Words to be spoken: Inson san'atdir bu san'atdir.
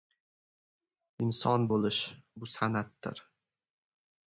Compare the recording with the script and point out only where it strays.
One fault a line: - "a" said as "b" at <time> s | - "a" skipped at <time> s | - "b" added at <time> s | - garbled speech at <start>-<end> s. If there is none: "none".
- "san'atdir" said as "bo‘lish" at 1.7 s